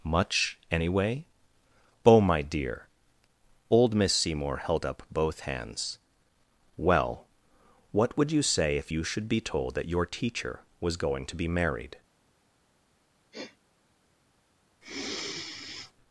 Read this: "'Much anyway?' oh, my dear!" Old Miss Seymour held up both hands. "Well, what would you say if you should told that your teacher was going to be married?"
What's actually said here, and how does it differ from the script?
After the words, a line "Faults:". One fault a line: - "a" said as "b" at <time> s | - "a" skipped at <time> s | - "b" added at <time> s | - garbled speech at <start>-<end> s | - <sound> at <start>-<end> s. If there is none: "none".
"'Much anyway?' oh, my dear!" Old Miss Seymour held up both hands. "Well, what would you say if you should be told that your teacher was going to be married?"
Faults:
- "be" added at 9.3 s
- sniff at 13.3-13.6 s
- sigh at 14.8-15.9 s